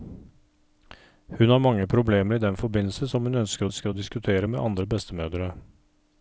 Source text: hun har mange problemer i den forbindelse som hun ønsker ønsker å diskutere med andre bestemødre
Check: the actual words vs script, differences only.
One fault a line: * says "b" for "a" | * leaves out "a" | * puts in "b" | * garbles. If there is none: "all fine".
all fine